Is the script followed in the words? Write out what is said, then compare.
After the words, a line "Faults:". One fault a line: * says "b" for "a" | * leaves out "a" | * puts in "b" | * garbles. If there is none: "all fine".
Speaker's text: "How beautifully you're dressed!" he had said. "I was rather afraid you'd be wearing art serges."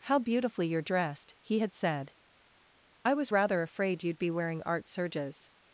"How beautifully you're dressed!" he had said. "I was rather afraid you'd be wearing art serges."
Faults:
all fine